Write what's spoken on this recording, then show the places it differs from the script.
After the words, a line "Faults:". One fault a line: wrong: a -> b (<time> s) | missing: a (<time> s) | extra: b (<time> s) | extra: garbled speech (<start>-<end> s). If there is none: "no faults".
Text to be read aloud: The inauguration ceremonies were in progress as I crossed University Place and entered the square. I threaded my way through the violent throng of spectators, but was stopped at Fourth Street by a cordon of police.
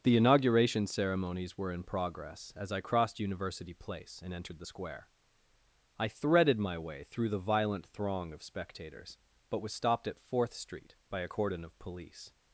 The inauguration ceremonies were in progress as I crossed University Place and entered the square. I threaded my way through the violent throng of spectators, but was stopped at Fourth Street by a cordon of police.
Faults:
no faults